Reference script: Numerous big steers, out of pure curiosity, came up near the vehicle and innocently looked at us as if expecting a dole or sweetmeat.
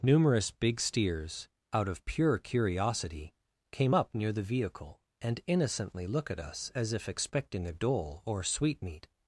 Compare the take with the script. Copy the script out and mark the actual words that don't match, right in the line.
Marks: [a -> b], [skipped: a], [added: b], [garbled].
Numerous big steers, out of pure curiosity, came up near the vehicle and innocently [looked -> look] at us as if expecting a dole or sweetmeat.